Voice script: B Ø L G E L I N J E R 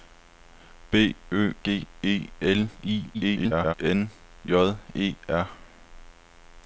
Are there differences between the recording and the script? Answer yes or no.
yes